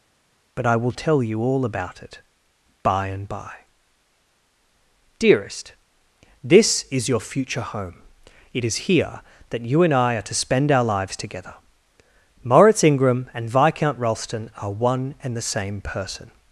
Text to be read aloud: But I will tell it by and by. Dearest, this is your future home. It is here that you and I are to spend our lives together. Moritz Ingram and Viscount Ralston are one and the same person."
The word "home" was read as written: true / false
true